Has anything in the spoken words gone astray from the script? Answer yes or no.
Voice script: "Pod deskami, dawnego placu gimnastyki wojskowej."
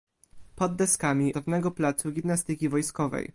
no